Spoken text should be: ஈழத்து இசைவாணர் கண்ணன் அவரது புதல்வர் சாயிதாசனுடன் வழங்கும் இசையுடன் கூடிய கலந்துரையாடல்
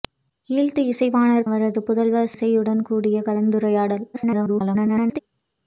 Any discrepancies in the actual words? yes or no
yes